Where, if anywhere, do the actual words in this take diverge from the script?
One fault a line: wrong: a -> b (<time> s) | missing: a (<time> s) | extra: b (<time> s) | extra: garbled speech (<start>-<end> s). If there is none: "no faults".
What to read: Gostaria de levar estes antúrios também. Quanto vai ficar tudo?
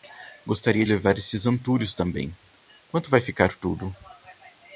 missing: de (0.8 s)